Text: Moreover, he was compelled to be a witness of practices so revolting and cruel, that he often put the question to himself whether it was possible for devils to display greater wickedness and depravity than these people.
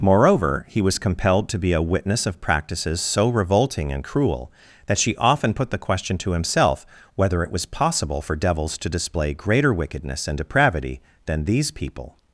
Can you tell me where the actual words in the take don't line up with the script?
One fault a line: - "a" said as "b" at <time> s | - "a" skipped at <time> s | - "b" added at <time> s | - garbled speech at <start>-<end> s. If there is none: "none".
- "he" said as "she" at 5.0 s